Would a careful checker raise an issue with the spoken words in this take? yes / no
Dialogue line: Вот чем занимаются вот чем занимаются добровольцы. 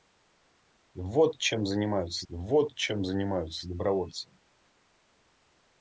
no